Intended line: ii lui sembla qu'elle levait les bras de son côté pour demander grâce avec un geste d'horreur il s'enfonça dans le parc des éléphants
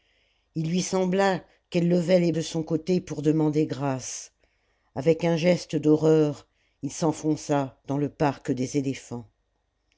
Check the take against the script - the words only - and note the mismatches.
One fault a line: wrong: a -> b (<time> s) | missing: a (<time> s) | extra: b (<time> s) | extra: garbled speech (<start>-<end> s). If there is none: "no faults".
missing: bras (2.3 s)